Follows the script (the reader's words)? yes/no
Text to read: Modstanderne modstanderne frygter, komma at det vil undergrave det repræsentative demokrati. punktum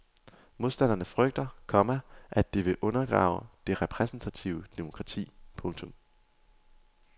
no